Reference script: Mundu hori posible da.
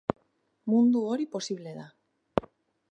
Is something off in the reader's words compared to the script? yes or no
no